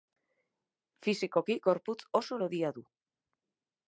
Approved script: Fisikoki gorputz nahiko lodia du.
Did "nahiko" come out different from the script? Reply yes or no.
yes